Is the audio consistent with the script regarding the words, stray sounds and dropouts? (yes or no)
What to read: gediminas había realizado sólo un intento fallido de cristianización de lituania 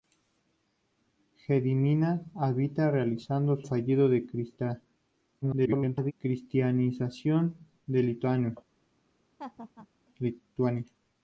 no